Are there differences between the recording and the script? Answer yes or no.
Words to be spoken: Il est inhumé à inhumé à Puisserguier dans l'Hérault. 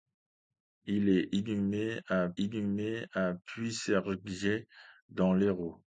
no